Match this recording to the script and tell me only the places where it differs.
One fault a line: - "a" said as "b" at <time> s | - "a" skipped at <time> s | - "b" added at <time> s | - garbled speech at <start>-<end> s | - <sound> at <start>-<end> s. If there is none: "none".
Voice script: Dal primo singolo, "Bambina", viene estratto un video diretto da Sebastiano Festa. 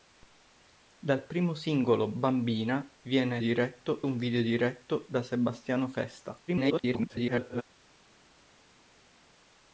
- "estratto" said as "diretto" at 3.4 s
- garbled speech at 6.5-7.6 s